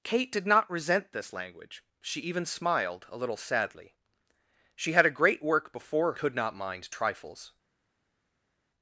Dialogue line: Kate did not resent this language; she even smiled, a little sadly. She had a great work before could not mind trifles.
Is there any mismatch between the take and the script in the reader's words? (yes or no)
no